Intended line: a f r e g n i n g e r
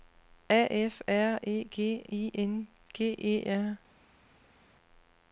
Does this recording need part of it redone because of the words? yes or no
yes